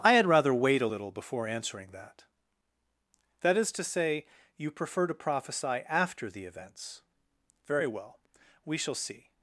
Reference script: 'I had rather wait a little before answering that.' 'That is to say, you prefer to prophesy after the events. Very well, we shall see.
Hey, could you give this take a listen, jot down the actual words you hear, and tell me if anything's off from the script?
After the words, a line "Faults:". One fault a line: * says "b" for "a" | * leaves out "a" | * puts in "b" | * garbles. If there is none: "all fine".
'I had rather wait a little before answering that.' 'That is to say, you prefer to prophesy after the events. Very well, we shall see.
Faults:
all fine